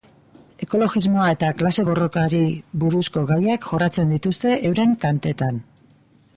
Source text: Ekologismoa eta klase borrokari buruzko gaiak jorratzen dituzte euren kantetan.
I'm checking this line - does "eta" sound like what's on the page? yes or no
yes